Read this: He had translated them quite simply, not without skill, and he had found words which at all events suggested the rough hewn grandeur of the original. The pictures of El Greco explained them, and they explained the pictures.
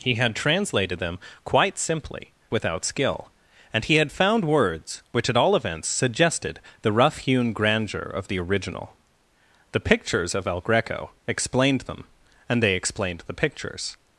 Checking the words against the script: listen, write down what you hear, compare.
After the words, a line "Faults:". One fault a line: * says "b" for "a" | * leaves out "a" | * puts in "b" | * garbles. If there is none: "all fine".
He had translated them quite simply, without skill, and he had found words which at all events suggested the rough hewn grandeur of the original. The pictures of El Greco explained them, and they explained the pictures.
Faults:
* leaves out "not"